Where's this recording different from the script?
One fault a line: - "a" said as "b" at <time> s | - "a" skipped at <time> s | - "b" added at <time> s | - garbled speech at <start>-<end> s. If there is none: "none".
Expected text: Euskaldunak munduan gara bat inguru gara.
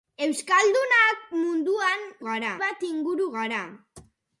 none